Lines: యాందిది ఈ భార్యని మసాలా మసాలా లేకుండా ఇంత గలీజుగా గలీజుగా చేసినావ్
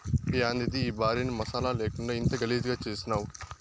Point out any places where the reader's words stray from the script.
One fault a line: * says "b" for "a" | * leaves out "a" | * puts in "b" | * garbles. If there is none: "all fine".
* leaves out "మసాలా"
* leaves out "గలీజుగా"